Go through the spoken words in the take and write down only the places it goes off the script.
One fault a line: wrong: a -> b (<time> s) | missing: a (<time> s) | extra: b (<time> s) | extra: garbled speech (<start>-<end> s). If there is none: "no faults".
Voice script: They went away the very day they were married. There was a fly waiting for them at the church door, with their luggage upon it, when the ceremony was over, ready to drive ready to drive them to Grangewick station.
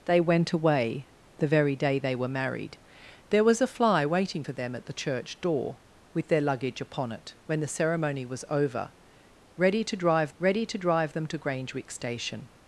no faults